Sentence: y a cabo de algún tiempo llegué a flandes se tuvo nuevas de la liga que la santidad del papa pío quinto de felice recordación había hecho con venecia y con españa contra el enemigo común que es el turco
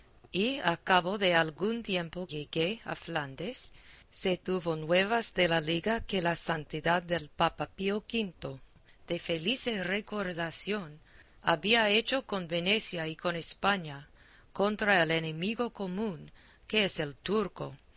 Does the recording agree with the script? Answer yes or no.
yes